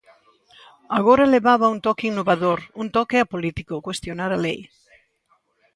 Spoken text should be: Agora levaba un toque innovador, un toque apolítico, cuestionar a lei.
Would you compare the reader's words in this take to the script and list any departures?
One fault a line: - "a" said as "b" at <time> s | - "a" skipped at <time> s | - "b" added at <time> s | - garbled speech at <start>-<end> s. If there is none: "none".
none